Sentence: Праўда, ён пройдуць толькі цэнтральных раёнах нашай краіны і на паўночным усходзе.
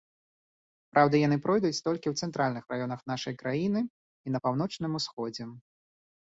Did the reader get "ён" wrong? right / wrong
wrong